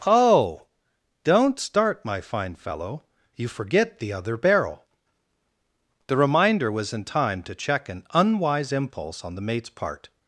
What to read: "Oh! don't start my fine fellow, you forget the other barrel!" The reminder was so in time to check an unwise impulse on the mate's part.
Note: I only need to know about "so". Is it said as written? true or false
false